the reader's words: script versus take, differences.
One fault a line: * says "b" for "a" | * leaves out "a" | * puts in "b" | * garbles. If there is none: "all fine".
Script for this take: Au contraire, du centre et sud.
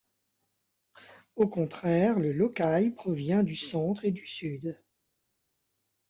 * puts in "le Lokai provient"
* puts in "du"